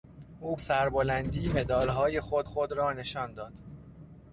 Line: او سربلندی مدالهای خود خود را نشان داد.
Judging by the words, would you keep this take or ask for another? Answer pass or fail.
pass